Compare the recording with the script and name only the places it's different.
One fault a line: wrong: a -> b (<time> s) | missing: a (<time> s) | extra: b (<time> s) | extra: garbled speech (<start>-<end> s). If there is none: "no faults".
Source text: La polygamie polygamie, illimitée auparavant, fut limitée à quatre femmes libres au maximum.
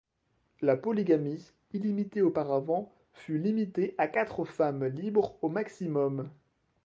missing: polygamie (1.5 s)